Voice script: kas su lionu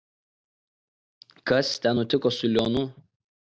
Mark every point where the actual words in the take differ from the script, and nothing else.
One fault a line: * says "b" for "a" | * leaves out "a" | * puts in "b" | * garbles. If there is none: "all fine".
* puts in "ten nutiko"